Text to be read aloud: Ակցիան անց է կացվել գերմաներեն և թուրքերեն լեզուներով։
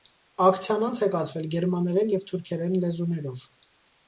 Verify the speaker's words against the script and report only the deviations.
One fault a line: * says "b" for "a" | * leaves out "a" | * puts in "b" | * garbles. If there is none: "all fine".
all fine